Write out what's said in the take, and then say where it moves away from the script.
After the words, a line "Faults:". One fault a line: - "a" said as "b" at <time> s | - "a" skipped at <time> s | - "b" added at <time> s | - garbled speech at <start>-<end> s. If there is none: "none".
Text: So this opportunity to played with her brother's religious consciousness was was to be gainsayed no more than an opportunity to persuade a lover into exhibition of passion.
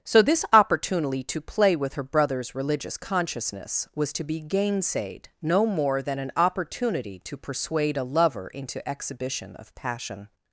So this opportunity to play with her brother's religious consciousness was to be gainsayed no more than an opportunity to persuade a lover into exhibition of passion.
Faults:
- "played" said as "play" at 1.4 s
- "was" skipped at 4.1 s